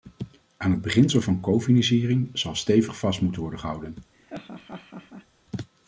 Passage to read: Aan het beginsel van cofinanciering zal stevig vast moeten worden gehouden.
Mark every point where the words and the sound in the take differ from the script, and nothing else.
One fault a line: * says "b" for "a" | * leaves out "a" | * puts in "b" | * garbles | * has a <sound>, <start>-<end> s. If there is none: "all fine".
* has a laugh, 4.1-5.3 s